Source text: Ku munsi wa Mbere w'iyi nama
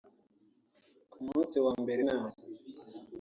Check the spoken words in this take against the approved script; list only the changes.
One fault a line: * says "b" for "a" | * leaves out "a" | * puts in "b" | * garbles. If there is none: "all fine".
* leaves out "w'iyi"